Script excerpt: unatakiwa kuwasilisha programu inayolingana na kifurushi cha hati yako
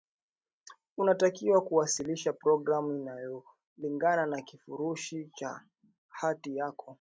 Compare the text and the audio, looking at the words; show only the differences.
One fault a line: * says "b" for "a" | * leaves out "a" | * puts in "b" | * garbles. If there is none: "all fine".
all fine